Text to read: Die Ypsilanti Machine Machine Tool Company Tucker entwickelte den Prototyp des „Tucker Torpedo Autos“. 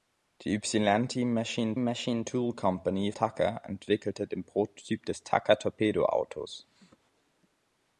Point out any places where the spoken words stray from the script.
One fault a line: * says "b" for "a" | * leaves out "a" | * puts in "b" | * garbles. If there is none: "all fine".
all fine